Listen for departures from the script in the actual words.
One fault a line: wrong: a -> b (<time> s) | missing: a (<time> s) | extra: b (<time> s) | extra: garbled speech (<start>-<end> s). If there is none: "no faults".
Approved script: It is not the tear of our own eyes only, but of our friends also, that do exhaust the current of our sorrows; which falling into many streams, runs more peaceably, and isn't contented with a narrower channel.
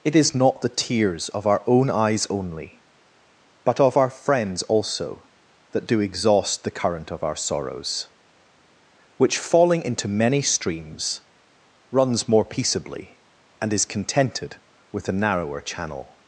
wrong: tear -> tears (0.7 s)
wrong: isn't -> is (13.7 s)